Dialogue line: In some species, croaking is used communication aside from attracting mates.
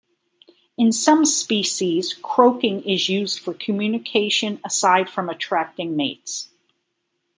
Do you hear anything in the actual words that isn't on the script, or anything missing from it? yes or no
yes